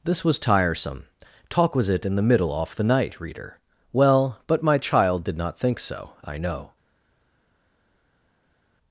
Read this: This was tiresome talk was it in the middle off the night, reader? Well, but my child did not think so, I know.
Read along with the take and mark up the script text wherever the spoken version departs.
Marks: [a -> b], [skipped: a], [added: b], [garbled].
This was tiresome talk was it in the middle off the night, reader? Well, but my child did not think so, I know.